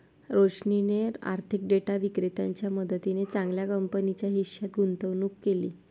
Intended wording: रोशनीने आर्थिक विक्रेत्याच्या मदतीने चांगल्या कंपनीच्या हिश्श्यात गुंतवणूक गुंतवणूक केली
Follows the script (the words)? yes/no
no